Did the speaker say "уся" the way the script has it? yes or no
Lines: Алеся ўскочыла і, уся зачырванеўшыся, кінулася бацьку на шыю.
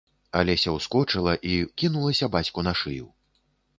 no